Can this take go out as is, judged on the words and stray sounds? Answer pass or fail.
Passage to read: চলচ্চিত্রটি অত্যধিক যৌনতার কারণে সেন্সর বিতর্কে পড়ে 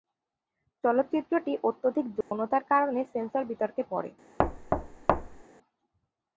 fail